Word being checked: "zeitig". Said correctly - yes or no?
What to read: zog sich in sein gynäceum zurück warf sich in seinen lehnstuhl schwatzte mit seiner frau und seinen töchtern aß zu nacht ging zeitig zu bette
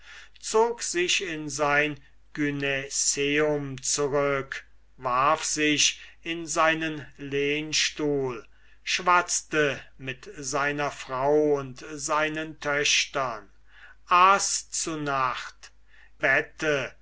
no